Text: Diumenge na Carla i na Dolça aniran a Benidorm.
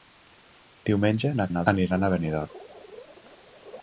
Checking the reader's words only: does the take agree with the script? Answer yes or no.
no